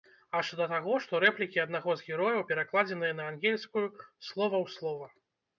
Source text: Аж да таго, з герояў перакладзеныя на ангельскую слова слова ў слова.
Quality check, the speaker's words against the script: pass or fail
fail